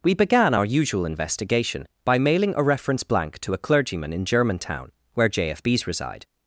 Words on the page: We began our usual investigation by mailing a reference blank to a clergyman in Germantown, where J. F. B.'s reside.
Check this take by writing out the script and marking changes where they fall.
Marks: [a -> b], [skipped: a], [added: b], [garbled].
We began our usual investigation by mailing a reference blank to a clergyman in Germantown, where J. F. B.'s reside.